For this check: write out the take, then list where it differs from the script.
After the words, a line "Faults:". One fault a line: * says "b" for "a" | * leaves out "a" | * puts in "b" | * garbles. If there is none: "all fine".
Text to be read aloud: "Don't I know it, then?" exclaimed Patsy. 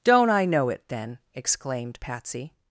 "Don't I know it, then?" exclaimed Patsy.
Faults:
all fine